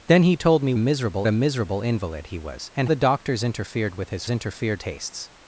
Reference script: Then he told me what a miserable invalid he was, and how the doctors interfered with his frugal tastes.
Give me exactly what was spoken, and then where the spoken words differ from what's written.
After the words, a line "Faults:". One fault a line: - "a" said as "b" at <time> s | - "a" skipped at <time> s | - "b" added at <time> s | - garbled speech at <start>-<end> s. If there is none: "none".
Then he told me miserable a miserable invalid he was, and the doctors interfered with his interfered tastes.
Faults:
- "what" said as "miserable" at 0.8 s
- "how" skipped at 2.9 s
- "frugal" said as "interfered" at 4.3 s